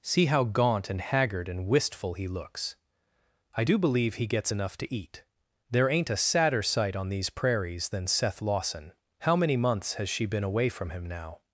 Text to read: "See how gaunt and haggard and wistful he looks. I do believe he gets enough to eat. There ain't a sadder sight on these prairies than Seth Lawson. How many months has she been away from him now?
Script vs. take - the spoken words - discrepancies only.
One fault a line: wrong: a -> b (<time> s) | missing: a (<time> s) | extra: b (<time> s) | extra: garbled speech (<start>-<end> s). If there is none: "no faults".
no faults